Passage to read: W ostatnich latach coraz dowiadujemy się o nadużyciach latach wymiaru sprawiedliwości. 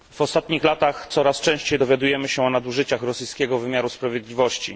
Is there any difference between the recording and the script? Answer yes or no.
yes